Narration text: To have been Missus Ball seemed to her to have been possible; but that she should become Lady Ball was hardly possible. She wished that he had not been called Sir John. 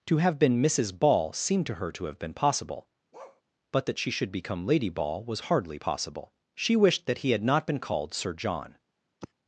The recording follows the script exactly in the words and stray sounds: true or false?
false